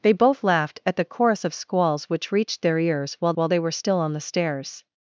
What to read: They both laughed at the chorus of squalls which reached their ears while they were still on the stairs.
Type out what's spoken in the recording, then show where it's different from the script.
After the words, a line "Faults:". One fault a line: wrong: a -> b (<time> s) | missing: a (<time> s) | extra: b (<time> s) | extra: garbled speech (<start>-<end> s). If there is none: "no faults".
They both laughed at the chorus of squalls which reached their ears while while they were still on the stairs.
Faults:
extra: while (3.3 s)